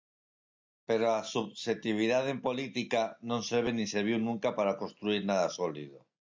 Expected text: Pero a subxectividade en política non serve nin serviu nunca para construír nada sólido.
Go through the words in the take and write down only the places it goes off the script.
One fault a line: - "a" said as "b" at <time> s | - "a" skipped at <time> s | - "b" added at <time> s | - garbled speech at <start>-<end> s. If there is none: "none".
none